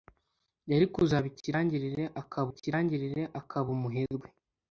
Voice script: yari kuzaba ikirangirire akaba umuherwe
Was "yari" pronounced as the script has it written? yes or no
yes